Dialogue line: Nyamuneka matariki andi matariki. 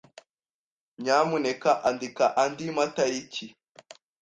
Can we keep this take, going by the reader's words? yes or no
no